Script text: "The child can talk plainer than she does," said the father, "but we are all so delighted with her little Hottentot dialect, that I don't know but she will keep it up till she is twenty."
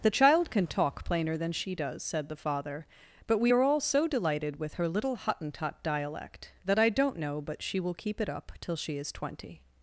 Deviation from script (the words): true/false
false